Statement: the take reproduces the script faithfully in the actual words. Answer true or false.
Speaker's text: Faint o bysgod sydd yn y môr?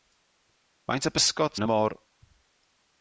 false